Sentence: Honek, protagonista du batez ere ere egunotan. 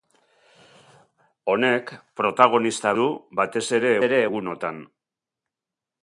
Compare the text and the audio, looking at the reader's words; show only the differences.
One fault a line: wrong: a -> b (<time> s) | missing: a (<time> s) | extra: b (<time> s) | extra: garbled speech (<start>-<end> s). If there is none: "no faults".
no faults